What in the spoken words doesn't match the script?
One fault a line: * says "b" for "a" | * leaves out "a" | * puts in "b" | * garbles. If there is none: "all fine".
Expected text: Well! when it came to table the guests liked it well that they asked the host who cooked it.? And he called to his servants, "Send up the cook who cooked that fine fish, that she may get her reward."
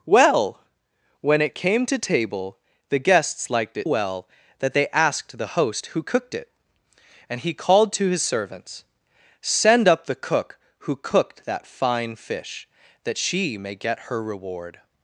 all fine